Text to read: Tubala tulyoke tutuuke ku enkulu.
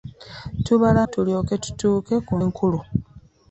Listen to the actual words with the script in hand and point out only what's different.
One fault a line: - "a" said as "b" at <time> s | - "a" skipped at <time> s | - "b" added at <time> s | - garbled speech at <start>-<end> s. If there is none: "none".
none